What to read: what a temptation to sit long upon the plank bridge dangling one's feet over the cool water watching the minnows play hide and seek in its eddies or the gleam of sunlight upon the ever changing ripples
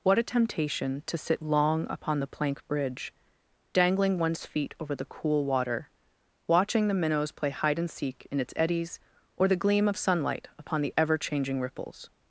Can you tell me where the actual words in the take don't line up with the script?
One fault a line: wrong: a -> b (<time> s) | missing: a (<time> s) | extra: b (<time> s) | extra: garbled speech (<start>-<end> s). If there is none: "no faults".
no faults